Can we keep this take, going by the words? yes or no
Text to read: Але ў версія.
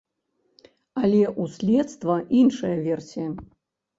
no